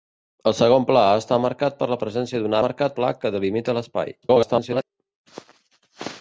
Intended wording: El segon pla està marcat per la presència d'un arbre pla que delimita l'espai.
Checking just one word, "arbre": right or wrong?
wrong